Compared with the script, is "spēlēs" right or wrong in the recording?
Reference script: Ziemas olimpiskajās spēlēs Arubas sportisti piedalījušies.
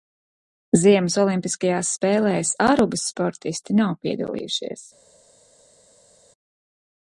right